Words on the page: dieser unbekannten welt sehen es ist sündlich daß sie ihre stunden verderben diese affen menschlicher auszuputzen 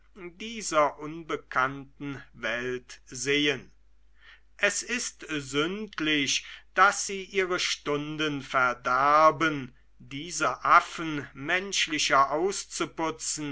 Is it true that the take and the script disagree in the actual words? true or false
false